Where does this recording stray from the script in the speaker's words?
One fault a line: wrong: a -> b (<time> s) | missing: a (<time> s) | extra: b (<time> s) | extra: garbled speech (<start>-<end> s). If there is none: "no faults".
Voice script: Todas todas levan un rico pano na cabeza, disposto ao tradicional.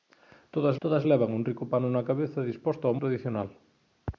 no faults